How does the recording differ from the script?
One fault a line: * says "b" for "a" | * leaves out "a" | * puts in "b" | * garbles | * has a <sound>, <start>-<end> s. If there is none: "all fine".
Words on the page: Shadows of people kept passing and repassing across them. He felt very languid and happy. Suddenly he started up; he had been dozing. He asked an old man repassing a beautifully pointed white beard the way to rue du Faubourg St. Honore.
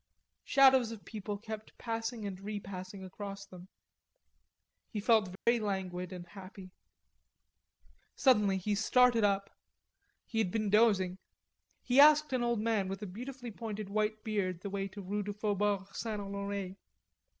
* has a dropout, 5.4-5.5 s
* says "with" for "repassing"